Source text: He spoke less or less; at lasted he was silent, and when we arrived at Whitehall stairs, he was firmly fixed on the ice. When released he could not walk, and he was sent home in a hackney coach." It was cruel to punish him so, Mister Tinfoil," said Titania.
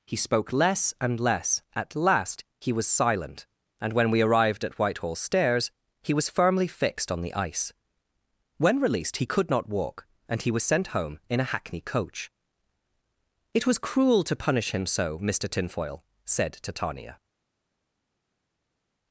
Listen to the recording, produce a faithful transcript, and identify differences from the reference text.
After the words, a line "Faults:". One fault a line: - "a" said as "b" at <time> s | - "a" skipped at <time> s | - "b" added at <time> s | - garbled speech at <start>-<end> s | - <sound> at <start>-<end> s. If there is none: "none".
He spoke less and less; at last he was silent, and when we arrived at Whitehall stairs, he was firmly fixed on the ice. When released he could not walk, and he was sent home in a hackney coach." It was cruel to punish him so, Mister Tinfoil," said Titania.
Faults:
- "or" said as "and" at 1.0 s
- "lasted" said as "last" at 1.9 s